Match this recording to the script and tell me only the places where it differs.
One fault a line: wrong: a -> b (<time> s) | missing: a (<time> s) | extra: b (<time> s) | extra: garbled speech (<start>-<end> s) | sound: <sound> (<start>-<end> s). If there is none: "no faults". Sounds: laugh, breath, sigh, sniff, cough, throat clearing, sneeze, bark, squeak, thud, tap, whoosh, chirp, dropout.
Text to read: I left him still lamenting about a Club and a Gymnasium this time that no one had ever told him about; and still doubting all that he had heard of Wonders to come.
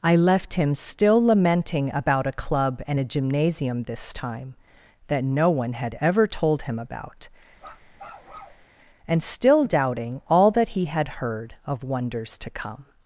sound: bark (7.6-8.7 s)